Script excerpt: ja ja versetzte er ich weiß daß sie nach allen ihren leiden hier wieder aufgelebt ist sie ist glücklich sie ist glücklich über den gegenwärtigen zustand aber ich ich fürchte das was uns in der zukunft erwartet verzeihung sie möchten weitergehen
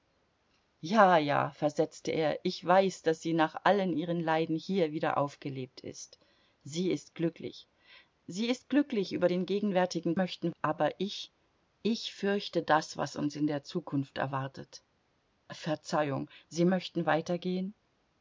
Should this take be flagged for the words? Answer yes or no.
yes